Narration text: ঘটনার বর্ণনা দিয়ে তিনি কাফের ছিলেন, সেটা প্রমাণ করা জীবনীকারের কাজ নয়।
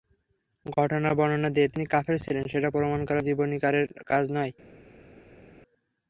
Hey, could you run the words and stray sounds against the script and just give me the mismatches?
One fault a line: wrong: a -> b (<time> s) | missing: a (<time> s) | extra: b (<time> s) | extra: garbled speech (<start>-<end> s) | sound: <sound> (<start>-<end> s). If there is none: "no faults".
no faults